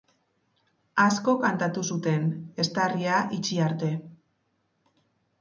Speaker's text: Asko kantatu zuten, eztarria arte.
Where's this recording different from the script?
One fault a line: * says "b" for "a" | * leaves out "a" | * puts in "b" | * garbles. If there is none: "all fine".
* puts in "itxi"